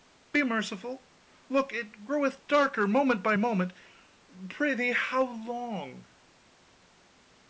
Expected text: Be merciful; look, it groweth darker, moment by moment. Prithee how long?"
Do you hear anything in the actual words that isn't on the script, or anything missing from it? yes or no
no